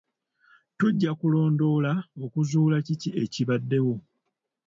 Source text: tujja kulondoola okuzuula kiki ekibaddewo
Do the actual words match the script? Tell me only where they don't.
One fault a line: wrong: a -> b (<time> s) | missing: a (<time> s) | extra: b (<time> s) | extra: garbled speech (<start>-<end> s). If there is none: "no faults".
no faults